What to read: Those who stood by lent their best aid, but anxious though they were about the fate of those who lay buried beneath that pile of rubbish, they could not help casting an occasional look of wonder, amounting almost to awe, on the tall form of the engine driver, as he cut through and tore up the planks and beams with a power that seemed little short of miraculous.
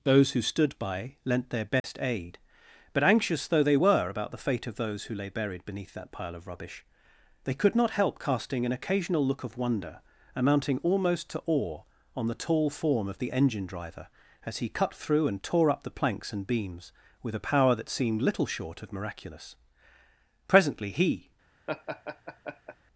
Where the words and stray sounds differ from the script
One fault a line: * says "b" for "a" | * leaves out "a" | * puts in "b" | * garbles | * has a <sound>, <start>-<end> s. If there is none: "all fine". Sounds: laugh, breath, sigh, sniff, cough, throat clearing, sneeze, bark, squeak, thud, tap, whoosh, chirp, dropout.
* has a dropout, 1.8-1.8 s
* puts in "Presently he"
* has a laugh, 21.7-22.8 s